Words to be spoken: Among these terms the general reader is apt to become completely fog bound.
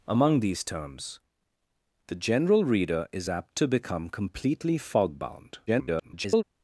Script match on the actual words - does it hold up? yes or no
no